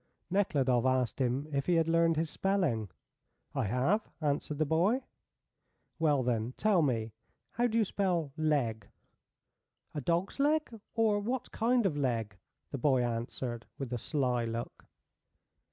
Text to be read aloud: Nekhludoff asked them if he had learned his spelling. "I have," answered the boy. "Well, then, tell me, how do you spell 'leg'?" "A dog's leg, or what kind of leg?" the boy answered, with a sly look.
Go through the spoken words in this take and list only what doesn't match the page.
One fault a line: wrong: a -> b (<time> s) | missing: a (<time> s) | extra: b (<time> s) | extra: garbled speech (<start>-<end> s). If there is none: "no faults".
wrong: them -> him (1.2 s)